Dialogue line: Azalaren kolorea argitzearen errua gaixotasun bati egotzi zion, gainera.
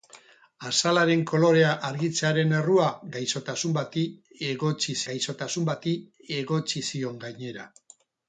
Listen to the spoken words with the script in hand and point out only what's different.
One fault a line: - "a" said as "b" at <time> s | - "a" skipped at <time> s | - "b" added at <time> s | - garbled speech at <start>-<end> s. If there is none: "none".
- "gaixotasun bati egotzi" added at 5.1 s